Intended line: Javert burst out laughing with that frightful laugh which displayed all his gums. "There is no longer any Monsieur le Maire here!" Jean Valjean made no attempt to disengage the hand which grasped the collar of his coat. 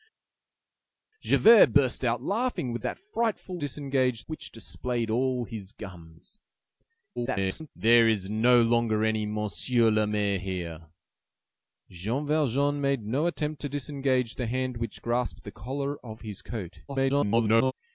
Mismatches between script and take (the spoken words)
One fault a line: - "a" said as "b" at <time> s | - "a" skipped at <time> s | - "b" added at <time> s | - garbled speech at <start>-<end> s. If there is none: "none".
- "laugh" said as "disengage" at 3.6 s
- garbled speech at 7.2-7.7 s
- garbled speech at 16.9-17.7 s